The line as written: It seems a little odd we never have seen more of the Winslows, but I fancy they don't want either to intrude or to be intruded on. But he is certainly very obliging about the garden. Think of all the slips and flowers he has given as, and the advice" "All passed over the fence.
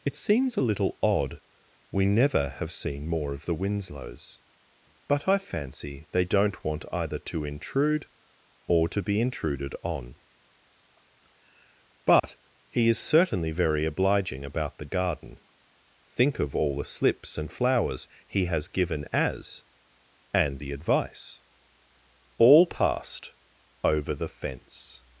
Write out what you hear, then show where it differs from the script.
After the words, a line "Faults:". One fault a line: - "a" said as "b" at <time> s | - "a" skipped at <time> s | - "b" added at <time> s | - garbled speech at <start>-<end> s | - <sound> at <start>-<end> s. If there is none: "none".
It seems a little odd we never have seen more of the Winslows, but I fancy they don't want either to intrude or to be intruded on. But he is certainly very obliging about the garden. Think of all the slips and flowers he has given as, and the advice" "All passed over the fence.
Faults:
- dropout at 12.2-12.2 s